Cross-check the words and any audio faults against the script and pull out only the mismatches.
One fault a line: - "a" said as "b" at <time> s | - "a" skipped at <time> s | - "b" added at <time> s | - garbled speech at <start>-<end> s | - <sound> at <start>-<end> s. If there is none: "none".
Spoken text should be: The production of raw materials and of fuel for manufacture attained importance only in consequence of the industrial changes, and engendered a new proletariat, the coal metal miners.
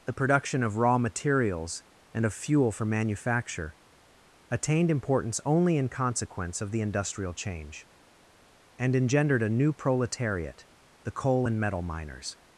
- "changes" said as "change" at 7.3 s
- "and" added at 11.4 s